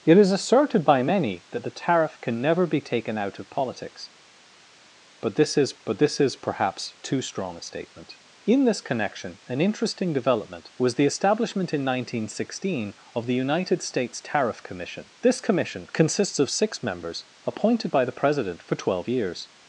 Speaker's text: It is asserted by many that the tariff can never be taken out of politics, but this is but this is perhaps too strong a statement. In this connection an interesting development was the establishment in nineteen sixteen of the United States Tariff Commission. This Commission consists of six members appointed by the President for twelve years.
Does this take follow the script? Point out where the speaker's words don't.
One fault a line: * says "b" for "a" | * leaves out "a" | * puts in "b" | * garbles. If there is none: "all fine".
all fine